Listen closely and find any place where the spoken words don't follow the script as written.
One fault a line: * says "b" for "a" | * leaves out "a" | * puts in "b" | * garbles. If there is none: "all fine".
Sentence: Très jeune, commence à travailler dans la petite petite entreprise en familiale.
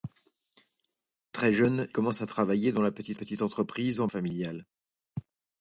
all fine